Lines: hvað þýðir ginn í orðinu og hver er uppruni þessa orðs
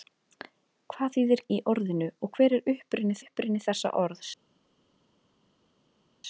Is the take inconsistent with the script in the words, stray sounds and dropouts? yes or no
yes